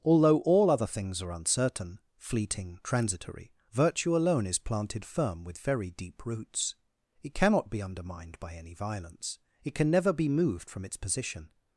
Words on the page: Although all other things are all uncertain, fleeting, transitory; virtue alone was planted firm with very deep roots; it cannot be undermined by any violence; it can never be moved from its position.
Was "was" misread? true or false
true